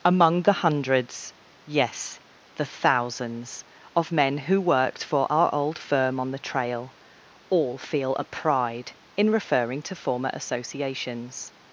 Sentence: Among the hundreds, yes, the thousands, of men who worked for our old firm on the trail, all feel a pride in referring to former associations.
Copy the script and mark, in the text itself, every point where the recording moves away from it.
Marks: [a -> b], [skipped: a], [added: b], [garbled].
Among the hundreds, yes, the thousands, of men who worked for our old firm on the trail, all feel a pride in referring to former associations.